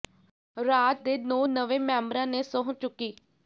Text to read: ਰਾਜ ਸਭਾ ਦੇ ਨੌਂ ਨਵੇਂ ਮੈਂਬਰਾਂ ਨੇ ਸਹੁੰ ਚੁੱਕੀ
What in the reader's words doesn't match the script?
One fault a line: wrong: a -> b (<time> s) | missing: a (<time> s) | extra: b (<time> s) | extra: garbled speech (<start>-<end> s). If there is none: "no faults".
missing: ਸਭਾ (1.0 s)